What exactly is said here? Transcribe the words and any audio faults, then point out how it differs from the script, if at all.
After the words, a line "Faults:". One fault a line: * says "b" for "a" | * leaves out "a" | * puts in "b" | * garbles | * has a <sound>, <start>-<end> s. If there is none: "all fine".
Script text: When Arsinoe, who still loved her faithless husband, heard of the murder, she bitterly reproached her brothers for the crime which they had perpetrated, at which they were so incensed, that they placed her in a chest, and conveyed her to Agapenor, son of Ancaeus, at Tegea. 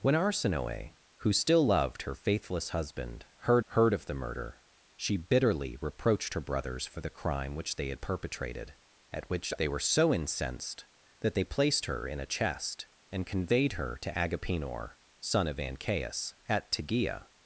When Arsinoe, who still loved her faithless husband, heard heard of the murder, she bitterly reproached her brothers for the crime which they had perpetrated, at which they were so incensed, that they placed her in a chest, and conveyed her to Agapenor, son of Ancaeus, at Tegea.
Faults:
* puts in "heard"